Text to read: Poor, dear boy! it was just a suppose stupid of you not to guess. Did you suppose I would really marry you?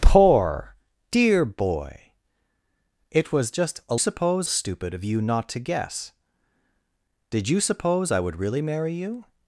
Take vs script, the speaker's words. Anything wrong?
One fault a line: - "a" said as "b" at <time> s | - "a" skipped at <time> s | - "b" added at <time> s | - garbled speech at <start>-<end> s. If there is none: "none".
none